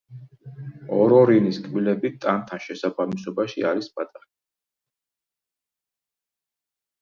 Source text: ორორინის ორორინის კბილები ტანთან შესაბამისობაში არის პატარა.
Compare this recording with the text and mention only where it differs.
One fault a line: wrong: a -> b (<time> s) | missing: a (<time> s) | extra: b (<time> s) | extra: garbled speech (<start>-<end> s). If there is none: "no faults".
missing: ორორინის (1.6 s)